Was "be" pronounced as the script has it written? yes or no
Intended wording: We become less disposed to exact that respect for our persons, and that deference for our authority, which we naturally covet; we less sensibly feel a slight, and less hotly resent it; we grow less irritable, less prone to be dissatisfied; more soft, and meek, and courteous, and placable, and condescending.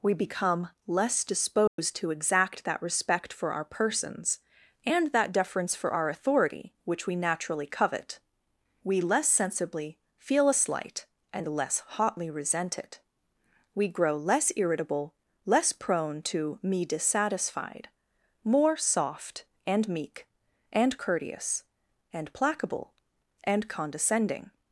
no